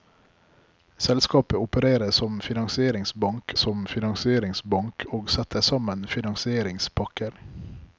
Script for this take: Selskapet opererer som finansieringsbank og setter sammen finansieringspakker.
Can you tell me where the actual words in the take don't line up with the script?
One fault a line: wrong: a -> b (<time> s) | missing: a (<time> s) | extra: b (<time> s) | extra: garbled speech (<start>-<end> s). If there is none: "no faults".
extra: som finansieringsbank (3.6 s)